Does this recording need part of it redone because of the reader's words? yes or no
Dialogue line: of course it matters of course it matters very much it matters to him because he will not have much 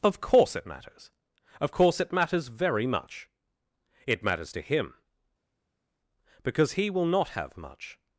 no